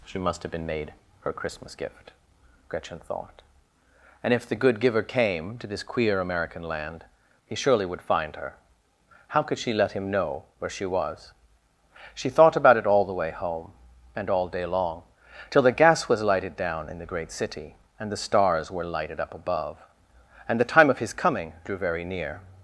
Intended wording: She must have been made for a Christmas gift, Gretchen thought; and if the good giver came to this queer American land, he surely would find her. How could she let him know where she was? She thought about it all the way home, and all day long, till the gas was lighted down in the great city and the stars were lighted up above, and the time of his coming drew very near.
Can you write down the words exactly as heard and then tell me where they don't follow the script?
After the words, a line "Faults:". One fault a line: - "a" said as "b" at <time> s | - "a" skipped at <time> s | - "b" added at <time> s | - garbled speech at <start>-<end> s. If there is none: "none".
She must have been made her Christmas gift, Gretchen thought; and if the good giver came to this queer American land, he surely would find her. How could she let him know where she was? She thought about it all the way home, and all day long, till the gas was lighted down in the great city and the stars were lighted up above, and the time of his coming drew very near.
Faults:
- "for a" said as "her" at 1.2 s